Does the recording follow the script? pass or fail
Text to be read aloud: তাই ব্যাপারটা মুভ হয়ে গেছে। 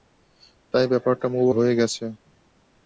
pass